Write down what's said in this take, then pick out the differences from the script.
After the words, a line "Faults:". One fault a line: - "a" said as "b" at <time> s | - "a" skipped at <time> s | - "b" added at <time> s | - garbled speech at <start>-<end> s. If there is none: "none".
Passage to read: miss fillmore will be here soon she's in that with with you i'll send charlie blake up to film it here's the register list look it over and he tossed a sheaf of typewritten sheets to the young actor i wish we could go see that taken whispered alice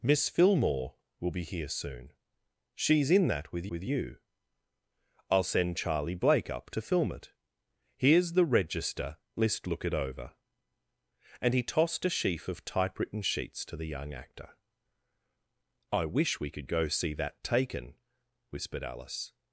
miss fillmore will be here soon she's in that with with you i'll send charlie blake up to film it here's the register list look it over and he tossed a sheaf of typewritten sheets to the young actor i wish we could go see that taken whispered alice
Faults:
none